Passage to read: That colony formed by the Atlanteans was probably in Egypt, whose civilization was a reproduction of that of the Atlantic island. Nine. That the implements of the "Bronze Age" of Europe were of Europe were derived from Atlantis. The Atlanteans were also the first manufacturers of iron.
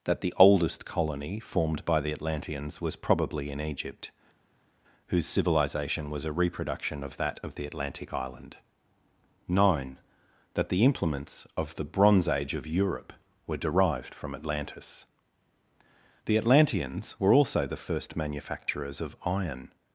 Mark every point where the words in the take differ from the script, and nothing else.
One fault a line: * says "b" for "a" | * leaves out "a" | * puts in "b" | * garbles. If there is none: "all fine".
* puts in "the oldest"
* leaves out "of Europe were"